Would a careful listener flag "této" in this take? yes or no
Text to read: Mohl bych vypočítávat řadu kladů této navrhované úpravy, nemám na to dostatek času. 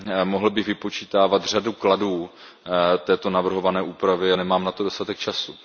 no